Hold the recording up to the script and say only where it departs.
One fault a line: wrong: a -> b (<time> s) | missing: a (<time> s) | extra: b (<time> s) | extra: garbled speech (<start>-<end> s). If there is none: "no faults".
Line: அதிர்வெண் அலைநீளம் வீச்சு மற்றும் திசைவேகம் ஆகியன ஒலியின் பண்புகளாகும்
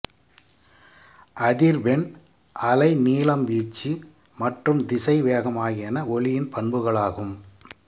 no faults